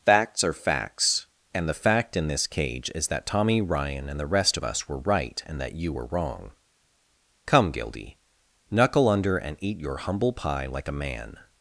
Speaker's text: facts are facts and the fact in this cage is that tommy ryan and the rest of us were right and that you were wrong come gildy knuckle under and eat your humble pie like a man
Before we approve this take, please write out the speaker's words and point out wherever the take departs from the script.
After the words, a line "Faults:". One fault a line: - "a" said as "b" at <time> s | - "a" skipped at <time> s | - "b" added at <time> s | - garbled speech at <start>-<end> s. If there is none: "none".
facts are facts and the fact in this cage is that tommy ryan and the rest of us were right and that you were wrong come gildy knuckle under and eat your humble pie like a man
Faults:
none